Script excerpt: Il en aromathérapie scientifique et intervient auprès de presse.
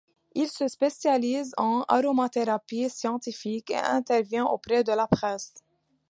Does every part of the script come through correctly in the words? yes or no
no